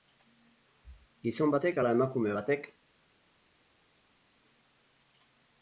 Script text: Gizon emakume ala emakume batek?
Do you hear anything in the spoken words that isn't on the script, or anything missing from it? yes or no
yes